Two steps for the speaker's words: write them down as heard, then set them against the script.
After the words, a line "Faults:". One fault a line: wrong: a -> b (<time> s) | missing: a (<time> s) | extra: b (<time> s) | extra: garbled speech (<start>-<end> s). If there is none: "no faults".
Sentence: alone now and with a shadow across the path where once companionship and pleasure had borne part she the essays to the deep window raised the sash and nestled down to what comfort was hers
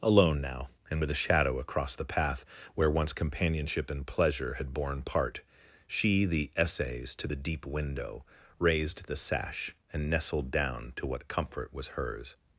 alone now and with a shadow across the path where once companionship and pleasure had borne part she the essays to the deep window raised the sash and nestled down to what comfort was hers
Faults:
no faults